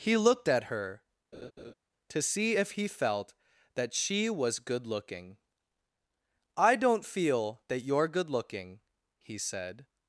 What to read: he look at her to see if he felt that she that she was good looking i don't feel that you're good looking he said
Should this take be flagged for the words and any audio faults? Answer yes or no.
yes